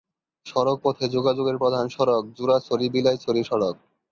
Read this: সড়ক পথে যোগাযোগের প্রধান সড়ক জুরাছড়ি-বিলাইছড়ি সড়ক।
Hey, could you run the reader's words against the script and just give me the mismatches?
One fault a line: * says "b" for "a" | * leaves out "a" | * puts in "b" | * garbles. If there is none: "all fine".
all fine